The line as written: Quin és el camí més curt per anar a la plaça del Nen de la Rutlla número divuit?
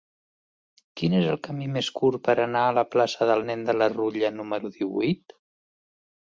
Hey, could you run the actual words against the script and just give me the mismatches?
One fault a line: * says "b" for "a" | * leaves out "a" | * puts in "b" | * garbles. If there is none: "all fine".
all fine